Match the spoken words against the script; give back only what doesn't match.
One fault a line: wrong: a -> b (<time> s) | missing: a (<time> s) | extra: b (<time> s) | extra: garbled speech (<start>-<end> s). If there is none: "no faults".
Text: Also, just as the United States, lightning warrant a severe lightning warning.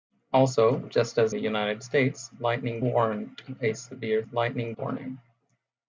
no faults